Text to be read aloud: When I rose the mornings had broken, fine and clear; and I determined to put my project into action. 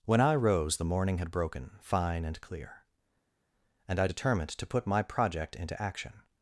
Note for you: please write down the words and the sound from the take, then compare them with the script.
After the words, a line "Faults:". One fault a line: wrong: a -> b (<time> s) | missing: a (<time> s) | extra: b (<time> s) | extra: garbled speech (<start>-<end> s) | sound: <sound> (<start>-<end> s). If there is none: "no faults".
When I rose the morning had broken, fine and clear; and I determined to put my project into action.
Faults:
wrong: mornings -> morning (0.8 s)